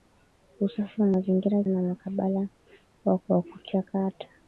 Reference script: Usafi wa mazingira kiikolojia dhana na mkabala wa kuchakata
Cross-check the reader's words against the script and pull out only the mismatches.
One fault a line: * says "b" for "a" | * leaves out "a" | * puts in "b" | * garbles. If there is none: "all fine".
* leaves out "kiikolojia dhana"
* puts in "wa"